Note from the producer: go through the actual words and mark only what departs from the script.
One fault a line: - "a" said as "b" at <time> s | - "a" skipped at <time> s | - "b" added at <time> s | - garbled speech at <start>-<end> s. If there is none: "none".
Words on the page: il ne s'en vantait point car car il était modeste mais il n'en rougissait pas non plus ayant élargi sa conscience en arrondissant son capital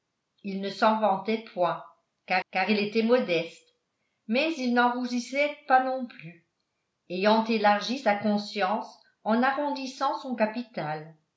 none